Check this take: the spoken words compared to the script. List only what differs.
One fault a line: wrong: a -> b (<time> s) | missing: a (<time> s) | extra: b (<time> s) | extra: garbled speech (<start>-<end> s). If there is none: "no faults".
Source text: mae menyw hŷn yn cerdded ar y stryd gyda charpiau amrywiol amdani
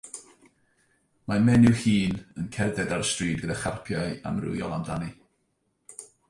no faults